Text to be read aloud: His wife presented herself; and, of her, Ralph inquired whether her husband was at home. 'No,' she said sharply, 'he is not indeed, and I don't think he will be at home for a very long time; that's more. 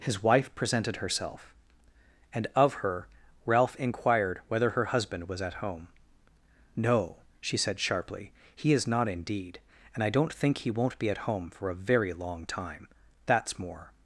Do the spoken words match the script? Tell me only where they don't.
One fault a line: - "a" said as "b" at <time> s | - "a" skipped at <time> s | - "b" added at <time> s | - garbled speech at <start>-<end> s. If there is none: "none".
- "will" said as "won't" at 10.7 s